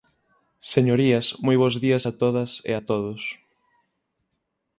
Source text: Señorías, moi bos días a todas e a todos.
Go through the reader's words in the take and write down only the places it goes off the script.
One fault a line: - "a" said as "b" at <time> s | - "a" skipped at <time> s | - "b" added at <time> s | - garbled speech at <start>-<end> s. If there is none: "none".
none